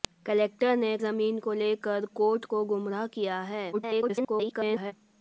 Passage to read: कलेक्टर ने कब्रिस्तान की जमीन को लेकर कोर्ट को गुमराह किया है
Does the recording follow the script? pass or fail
fail